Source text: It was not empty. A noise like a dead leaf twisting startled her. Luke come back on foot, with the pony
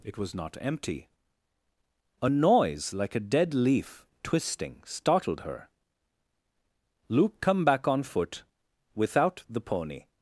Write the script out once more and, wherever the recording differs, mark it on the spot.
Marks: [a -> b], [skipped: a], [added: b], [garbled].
It was not empty. A noise like a dead leaf twisting startled her. Luke come back on foot, [with -> without] the pony